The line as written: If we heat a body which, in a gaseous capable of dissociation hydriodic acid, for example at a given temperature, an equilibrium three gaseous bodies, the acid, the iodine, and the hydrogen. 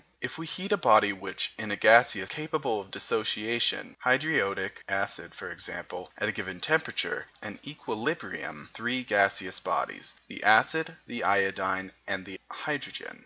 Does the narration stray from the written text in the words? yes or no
no